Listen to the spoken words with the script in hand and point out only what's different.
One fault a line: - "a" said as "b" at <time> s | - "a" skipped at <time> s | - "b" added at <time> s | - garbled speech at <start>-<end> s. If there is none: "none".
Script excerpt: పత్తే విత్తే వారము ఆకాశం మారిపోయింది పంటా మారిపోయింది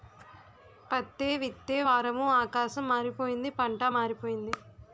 none